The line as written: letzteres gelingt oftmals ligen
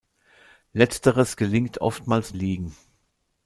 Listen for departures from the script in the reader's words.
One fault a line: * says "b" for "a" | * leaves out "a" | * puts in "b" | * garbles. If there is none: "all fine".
all fine